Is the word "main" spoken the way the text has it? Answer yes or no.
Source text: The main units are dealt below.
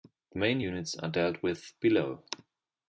yes